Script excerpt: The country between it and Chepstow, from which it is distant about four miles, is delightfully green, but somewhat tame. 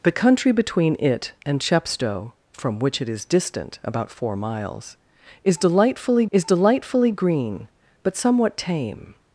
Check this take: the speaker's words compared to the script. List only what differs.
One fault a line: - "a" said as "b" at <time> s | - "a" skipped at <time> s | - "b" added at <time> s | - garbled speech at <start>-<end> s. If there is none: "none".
- "is delightfully" added at 6.3 s